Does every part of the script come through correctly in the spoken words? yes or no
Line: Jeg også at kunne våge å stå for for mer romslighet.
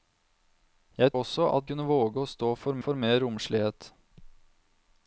yes